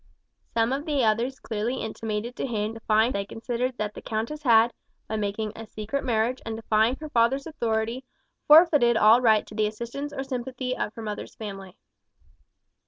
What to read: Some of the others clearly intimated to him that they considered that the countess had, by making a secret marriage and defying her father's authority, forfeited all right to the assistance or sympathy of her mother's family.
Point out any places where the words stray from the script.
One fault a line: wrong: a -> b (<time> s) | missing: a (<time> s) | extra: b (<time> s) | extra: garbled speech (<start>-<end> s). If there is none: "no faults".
wrong: that -> defying (2.7 s)